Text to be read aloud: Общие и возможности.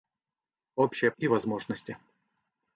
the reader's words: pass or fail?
pass